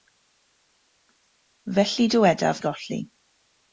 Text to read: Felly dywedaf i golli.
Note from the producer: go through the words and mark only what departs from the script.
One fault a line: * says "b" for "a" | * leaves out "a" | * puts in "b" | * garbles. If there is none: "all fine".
all fine